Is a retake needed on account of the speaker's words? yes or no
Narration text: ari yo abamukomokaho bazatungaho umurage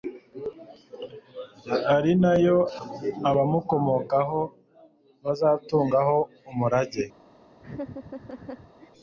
yes